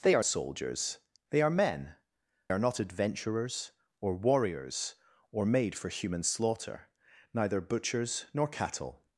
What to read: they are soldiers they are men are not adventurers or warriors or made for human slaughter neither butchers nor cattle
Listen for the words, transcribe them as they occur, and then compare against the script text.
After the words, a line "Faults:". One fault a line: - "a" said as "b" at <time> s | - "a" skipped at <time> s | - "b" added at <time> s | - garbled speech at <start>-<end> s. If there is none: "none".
they are soldiers they are men are not adventurers or warriors or made for human slaughter neither butchers nor cattle
Faults:
none